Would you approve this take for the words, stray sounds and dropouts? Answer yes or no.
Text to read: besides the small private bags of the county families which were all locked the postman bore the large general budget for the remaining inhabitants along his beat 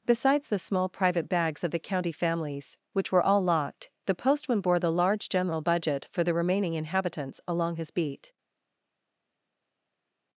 yes